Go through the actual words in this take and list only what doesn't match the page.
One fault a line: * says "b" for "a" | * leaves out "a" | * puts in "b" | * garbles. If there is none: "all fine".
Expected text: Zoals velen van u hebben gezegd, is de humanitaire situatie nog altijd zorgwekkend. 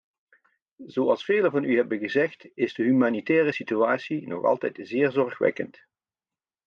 * puts in "zeer"